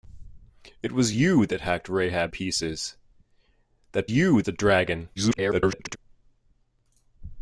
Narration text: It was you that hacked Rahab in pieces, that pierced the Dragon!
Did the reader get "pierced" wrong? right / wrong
wrong